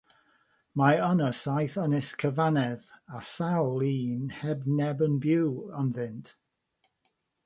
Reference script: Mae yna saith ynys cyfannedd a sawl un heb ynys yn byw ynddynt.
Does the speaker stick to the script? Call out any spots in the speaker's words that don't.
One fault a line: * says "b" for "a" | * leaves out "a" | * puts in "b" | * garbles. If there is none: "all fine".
* says "neb" for "ynys"